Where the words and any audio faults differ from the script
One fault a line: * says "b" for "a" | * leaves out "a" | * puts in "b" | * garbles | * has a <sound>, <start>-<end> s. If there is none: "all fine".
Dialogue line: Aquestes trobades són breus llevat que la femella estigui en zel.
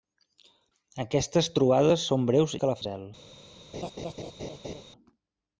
* leaves out "llevat"
* leaves out "femella estigui"
* has a laugh, 3.7-4.8 s